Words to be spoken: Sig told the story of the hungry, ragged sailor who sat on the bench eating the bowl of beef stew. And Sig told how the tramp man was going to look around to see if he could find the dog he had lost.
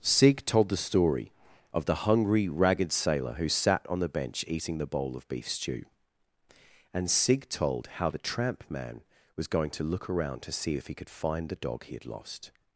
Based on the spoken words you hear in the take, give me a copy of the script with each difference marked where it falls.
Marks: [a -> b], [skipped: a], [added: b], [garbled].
Sig told the story of the hungry, ragged sailor who sat on the bench eating the bowl of beef stew. And Sig told how the tramp man was going to look around to see if he could find the dog he had lost.